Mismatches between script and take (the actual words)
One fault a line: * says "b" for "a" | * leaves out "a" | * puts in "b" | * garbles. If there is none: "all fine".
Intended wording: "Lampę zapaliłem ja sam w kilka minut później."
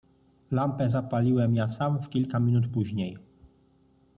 all fine